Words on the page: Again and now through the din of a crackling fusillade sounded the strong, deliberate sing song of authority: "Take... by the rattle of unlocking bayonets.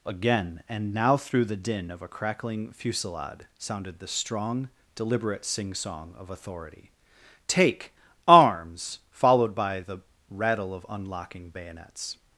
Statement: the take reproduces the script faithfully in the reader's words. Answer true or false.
false